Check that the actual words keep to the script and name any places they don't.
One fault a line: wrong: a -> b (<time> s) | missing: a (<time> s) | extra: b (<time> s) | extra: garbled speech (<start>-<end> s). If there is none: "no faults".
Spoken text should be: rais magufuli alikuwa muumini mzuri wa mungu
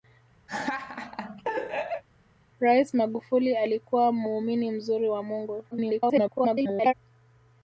extra: garbled speech (5.7-6.9 s)